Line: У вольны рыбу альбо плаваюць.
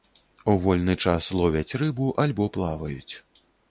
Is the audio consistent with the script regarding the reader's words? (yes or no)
no